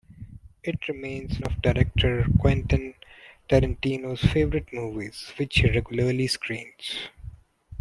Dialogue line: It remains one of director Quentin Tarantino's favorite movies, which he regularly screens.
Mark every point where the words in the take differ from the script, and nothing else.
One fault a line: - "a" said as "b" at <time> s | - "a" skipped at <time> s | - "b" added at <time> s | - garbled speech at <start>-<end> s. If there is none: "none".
- "one" skipped at 1.4 s